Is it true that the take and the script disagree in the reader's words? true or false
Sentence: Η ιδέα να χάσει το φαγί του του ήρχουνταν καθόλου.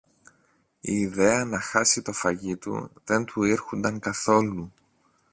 true